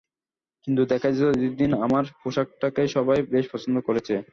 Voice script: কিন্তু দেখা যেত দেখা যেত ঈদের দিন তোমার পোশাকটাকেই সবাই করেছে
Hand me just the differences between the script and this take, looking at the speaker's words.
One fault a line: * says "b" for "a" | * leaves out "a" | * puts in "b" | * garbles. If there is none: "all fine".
* leaves out "দেখা যেত"
* says "আমার" for "তোমার"
* puts in "বেশ পছন্দ"